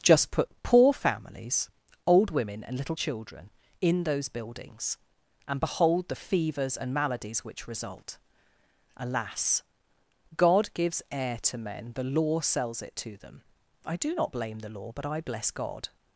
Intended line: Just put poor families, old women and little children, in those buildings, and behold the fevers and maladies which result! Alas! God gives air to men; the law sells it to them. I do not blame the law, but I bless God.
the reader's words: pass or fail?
pass